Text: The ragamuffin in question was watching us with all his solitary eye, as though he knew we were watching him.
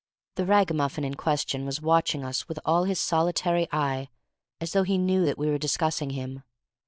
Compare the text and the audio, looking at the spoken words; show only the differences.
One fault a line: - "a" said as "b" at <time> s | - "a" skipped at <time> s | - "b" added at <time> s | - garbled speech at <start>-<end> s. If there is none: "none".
- "that" added at 5.2 s
- "watching" said as "discussing" at 5.6 s